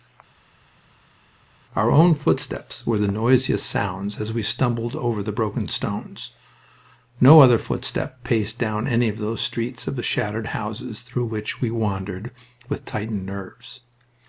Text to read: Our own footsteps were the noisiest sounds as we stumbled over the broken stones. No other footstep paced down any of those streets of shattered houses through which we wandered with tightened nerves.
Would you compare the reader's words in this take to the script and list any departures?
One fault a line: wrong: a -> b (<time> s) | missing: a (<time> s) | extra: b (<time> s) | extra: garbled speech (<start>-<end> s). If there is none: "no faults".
no faults